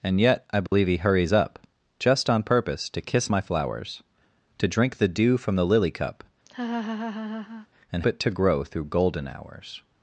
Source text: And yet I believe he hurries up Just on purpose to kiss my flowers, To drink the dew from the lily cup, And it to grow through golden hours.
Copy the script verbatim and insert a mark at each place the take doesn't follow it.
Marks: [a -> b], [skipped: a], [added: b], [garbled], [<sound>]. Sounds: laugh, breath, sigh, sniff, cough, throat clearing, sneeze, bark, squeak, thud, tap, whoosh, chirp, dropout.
And yet I believe [dropout] he hurries up Just on purpose to kiss my flowers, To drink the dew from the lily cup, [laugh] And it to grow through golden hours.